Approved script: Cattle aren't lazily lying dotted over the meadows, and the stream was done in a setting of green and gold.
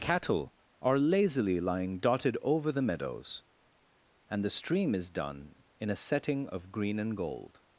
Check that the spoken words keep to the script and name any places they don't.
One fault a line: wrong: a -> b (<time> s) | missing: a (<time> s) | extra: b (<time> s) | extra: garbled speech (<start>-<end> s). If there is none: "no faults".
wrong: aren't -> are (0.8 s)
wrong: was -> is (5.0 s)